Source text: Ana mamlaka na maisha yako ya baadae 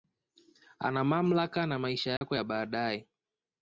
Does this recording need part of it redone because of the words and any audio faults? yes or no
yes